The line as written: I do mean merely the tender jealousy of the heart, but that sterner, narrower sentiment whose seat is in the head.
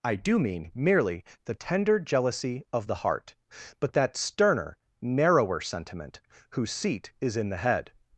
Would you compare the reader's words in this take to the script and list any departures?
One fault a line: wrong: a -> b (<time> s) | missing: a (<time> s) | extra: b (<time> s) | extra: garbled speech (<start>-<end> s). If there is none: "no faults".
no faults